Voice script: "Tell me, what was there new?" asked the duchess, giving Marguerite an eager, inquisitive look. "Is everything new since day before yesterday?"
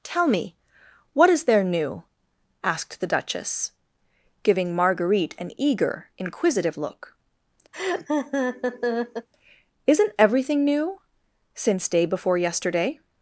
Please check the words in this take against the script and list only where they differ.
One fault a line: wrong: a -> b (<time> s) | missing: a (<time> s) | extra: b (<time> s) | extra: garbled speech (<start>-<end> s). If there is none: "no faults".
wrong: was -> is (1.3 s)
wrong: Is -> Isn't (9.9 s)